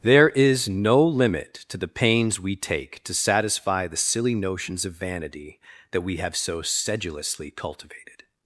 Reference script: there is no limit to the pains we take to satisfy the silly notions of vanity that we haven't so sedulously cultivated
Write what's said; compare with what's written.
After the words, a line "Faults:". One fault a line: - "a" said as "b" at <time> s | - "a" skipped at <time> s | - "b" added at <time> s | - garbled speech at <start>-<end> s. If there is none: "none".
there is no limit to the pains we take to satisfy the silly notions of vanity that we have so sedulously cultivated
Faults:
- "haven't" said as "have" at 6.2 s